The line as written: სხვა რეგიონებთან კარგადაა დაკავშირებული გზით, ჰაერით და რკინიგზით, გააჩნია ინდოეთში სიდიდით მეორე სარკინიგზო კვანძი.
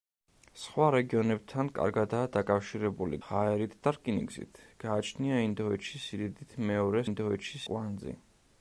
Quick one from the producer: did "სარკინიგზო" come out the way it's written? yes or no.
no